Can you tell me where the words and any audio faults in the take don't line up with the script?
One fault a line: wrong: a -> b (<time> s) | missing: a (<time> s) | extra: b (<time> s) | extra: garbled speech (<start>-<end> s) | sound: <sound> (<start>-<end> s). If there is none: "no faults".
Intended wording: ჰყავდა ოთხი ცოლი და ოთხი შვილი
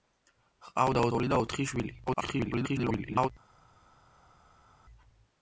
missing: ოთხი (1.1 s)
extra: garbled speech (2.1-3.3 s)